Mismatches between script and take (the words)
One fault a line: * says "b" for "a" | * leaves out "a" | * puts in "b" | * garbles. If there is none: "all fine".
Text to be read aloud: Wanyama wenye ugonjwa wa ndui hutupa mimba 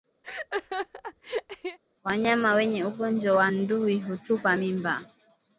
all fine